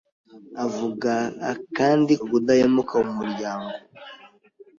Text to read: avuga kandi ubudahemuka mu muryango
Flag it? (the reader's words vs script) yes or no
no